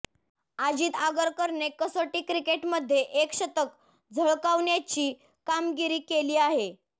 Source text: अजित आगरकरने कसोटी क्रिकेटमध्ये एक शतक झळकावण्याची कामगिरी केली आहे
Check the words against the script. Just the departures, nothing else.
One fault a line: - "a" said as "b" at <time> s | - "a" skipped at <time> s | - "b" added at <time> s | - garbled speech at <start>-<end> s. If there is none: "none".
none